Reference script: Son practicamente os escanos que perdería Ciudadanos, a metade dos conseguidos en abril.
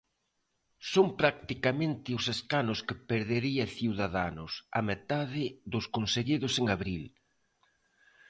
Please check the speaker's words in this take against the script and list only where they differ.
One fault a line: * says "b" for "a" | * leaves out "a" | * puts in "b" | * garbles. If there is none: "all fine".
all fine